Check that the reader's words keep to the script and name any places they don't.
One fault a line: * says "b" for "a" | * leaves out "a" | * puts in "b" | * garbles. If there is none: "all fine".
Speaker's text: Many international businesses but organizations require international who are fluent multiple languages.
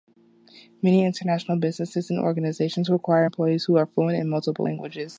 * says "and" for "but"
* says "employees" for "international"
* puts in "in"